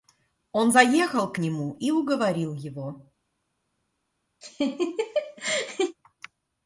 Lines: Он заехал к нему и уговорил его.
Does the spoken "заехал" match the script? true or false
true